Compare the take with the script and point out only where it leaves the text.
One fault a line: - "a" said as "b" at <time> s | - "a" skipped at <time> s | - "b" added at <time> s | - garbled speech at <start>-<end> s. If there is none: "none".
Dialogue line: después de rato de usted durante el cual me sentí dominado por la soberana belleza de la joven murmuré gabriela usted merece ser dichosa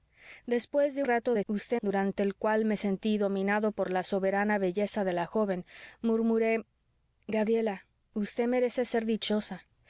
none